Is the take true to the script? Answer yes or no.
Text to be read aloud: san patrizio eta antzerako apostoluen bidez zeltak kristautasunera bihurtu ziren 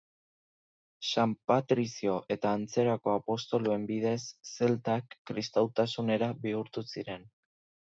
yes